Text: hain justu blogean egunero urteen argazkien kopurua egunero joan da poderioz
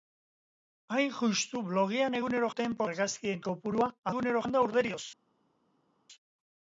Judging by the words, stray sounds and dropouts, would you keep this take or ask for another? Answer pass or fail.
pass